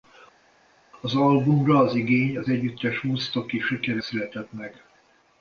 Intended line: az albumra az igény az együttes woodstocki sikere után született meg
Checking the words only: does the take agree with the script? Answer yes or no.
no